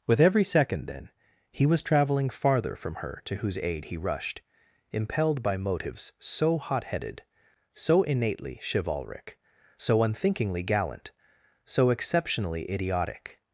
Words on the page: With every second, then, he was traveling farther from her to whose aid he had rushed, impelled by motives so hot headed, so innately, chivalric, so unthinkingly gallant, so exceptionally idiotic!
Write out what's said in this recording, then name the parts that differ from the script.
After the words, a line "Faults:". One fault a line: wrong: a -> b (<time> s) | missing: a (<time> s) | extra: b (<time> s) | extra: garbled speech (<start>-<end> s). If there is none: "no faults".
With every second, then, he was traveling farther from her to whose aid he rushed, impelled by motives so hot headed, so innately, chivalric, so unthinkingly gallant, so exceptionally idiotic!
Faults:
missing: had (4.0 s)